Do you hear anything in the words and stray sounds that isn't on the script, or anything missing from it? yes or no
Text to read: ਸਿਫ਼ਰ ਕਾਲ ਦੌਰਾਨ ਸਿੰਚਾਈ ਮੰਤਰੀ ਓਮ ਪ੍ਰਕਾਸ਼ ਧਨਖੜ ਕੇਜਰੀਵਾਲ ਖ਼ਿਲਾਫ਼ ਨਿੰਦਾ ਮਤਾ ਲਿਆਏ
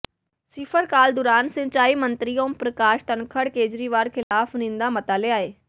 yes